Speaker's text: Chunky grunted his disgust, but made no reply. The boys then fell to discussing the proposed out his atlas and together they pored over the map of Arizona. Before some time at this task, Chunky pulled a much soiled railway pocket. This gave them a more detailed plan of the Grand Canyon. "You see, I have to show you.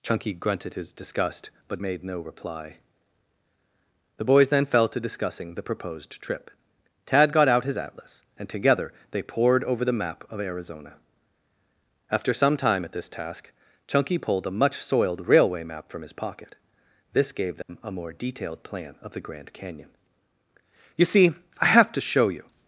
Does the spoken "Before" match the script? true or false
false